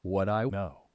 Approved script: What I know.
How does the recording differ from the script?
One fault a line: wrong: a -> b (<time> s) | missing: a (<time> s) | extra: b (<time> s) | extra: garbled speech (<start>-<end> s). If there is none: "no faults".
no faults